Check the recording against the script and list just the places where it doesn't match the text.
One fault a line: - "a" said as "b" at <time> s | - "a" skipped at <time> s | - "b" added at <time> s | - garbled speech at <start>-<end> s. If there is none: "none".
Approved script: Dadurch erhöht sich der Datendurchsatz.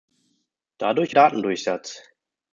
- "erhöht sich der" skipped at 1.1 s